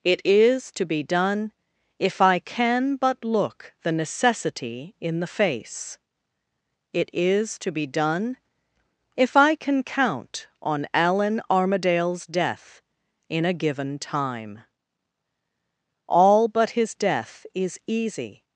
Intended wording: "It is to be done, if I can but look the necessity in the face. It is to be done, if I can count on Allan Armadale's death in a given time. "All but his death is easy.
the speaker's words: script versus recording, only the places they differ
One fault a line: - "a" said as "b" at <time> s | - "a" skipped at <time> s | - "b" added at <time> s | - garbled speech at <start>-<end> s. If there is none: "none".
none